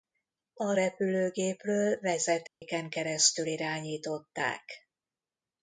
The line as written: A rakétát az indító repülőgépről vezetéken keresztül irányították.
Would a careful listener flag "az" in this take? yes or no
yes